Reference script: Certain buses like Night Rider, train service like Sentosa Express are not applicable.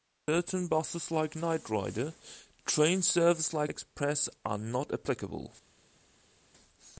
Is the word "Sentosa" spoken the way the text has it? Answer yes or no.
no